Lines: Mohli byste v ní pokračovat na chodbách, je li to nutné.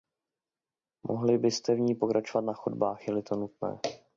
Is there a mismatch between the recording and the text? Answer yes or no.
no